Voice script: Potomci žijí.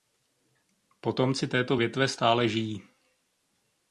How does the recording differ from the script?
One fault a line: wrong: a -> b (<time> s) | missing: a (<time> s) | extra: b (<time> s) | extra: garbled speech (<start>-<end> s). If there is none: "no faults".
extra: této větve stále (1.5 s)